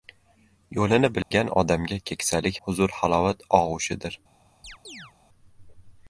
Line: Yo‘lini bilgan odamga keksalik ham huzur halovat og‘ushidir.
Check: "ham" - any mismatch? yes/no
yes